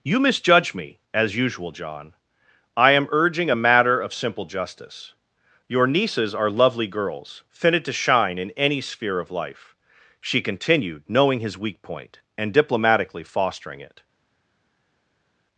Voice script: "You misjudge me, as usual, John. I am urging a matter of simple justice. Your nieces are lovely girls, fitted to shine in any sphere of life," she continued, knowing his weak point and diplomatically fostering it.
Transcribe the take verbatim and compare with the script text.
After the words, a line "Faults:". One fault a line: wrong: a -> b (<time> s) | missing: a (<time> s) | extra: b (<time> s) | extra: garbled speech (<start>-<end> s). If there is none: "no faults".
"You misjudge me, as usual, John. I am urging a matter of simple justice. Your nieces are lovely girls, fitted to shine in any sphere of life," she continued, knowing his weak point and diplomatically fostering it.
Faults:
no faults